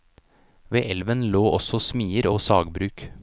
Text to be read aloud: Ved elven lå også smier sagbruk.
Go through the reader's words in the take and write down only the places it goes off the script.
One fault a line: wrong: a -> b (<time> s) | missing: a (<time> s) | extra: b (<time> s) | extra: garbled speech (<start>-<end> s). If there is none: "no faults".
extra: og (2.3 s)